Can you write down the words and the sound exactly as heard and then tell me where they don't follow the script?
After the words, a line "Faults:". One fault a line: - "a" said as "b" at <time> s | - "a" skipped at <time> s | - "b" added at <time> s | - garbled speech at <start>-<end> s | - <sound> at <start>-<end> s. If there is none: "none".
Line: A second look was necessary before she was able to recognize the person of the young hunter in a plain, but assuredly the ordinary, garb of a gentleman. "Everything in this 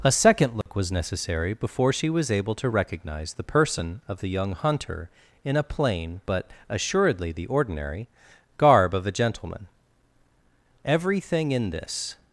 A second look was necessary before she was able to recognize the person of the young hunter in a plain, but assuredly the ordinary, garb of a gentleman. "Everything in this
Faults:
- dropout at 0.6-0.7 s